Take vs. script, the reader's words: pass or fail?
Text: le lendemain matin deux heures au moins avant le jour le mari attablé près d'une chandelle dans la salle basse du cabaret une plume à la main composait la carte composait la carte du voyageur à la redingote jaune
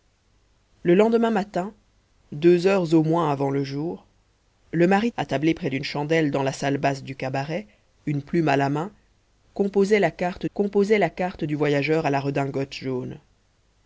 pass